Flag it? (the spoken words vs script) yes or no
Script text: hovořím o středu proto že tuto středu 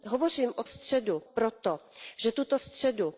no